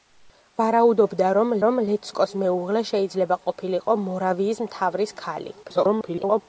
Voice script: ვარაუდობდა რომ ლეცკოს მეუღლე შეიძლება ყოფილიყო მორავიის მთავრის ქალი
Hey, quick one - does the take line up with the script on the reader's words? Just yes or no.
no